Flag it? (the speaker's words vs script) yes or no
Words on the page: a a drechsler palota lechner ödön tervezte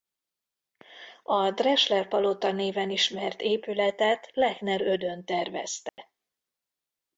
yes